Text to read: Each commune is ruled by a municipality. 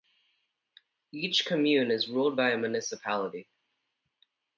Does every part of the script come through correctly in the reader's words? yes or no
yes